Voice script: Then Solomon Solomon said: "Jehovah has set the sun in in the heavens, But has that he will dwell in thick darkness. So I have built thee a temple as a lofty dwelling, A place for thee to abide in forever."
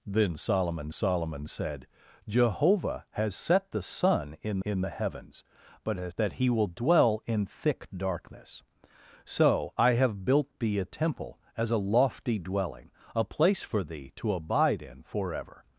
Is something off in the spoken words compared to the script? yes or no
no